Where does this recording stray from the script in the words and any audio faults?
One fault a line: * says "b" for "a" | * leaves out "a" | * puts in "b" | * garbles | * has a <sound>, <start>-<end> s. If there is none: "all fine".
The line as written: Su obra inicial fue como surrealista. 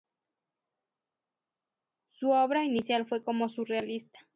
all fine